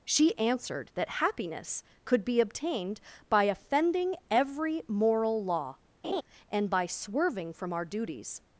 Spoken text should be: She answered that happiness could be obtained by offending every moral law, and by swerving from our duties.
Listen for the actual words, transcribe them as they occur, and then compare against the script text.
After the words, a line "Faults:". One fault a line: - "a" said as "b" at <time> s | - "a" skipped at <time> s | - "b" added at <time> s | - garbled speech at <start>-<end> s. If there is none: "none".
She answered that happiness could be obtained by offending every moral law, and by swerving from our duties.
Faults:
none